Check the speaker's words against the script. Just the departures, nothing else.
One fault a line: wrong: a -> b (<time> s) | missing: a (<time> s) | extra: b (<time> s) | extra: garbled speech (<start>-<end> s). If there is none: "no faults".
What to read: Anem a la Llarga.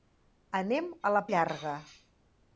no faults